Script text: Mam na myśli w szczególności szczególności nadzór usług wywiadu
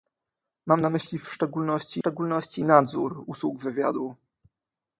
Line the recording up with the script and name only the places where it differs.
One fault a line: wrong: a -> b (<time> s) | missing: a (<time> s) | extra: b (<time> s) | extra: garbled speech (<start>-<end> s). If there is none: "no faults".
no faults